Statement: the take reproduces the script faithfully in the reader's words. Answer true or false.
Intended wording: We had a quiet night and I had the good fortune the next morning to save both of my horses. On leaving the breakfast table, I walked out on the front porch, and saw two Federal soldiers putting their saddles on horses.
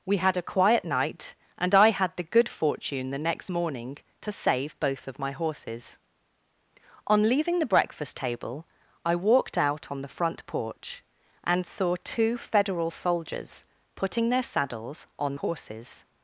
true